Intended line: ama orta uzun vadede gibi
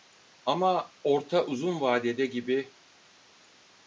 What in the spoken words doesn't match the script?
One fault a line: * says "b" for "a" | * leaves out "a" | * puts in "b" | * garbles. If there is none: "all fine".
all fine